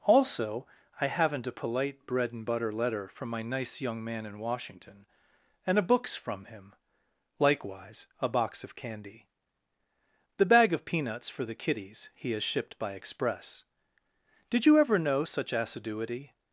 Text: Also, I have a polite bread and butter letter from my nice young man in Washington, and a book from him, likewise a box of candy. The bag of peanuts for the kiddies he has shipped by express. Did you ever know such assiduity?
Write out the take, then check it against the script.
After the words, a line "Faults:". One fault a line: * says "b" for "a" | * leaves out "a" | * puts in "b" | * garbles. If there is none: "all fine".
Also, I haven't a polite bread and butter letter from my nice young man in Washington, and a books from him, likewise a box of candy. The bag of peanuts for the kiddies he has shipped by express. Did you ever know such assiduity?
Faults:
* says "haven't" for "have"
* says "books" for "book"